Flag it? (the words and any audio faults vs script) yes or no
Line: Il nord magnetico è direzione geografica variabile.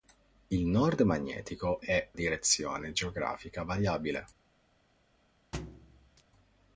yes